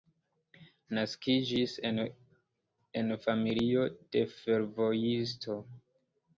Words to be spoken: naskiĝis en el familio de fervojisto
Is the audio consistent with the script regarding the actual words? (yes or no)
no